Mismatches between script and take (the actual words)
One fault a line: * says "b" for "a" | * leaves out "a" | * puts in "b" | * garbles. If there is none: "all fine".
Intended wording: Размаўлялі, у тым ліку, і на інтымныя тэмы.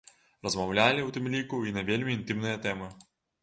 * puts in "вельмі"